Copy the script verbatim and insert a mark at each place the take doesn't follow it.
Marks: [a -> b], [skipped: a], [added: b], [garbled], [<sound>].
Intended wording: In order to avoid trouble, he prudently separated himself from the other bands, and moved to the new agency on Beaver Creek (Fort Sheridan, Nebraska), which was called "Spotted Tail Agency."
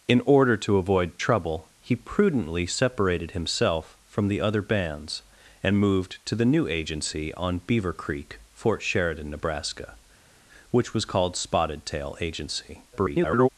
In order to avoid trouble, he prudently separated himself from the other bands, and moved to the new agency on Beaver Creek (Fort Sheridan, Nebraska), which was called "Spotted Tail Agency." [garbled]